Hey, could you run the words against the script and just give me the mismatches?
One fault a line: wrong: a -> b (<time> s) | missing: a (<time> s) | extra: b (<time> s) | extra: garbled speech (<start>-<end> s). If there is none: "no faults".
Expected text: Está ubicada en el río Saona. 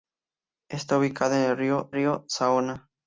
extra: río (1.9 s)